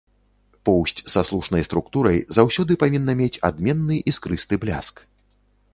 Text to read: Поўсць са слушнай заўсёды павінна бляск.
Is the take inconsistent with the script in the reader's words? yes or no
yes